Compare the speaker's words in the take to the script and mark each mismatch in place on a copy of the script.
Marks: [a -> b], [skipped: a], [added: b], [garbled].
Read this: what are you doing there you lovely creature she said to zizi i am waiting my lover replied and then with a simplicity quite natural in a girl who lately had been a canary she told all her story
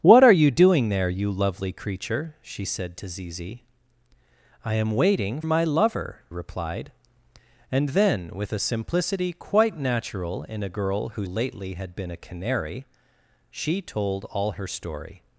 what are you doing there you lovely creature she said to zizi i am waiting my lover replied and then with a simplicity quite natural in a girl who lately had been a canary she told all her story